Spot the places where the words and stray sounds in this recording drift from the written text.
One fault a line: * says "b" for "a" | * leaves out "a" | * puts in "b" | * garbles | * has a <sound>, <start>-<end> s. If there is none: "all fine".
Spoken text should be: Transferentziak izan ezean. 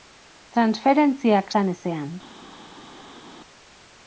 all fine